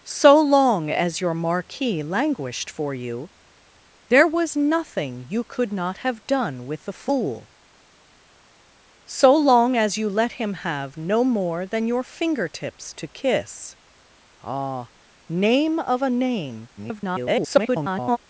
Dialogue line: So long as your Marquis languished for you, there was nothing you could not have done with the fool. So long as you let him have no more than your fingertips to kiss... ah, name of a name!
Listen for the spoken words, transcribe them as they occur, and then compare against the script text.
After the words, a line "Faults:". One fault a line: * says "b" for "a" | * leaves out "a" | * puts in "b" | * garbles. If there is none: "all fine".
So long as your Marquis languished for you, there was nothing you could not have done with the fool. So long as you let him have no more than your fingertips to kiss... ah, name of a name! [garbled]
Faults:
* garbles